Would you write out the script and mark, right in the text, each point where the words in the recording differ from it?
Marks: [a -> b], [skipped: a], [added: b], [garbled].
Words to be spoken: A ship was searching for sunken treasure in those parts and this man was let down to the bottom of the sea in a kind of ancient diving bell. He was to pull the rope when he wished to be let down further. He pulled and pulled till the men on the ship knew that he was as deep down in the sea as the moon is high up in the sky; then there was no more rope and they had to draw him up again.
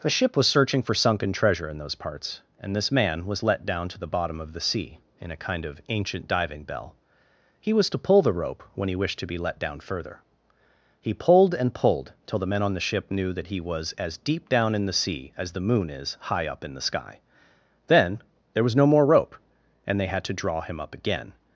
[A -> The] ship was searching for sunken treasure in those parts and this man was let down to the bottom of the sea in a kind of ancient diving bell. He was to pull the rope when he wished to be let down further. He pulled and pulled till the men on the ship knew that he was as deep down in the sea as the moon is high up in the sky; then there was no more rope and they had to draw him up again.